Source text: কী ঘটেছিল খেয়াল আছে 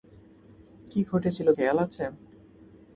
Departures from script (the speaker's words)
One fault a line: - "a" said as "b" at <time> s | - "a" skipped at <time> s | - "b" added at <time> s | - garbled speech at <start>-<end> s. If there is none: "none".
none